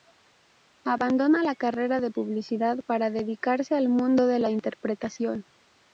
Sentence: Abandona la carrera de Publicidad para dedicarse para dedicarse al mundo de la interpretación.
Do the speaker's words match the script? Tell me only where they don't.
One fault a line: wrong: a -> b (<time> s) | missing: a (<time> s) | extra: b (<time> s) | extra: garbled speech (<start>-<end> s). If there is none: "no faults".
missing: para dedicarse (3.7 s)